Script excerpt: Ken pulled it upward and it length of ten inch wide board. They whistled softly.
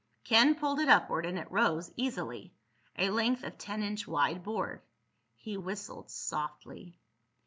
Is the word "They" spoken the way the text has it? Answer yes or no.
no